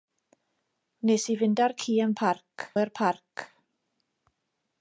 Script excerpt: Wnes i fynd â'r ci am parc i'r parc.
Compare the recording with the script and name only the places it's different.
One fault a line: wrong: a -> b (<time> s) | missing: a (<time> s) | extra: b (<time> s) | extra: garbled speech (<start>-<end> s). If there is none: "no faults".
no faults